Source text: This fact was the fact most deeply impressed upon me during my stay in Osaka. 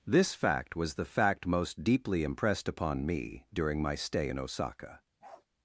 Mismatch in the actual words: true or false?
false